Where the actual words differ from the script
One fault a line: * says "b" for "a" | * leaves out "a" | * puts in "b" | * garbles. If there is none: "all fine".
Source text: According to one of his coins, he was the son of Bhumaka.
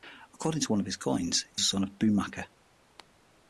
* leaves out "was"